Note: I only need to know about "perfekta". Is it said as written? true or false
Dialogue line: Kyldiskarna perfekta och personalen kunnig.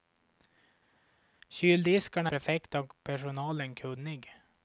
true